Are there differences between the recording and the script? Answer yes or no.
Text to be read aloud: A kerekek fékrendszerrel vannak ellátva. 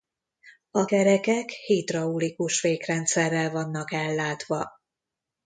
yes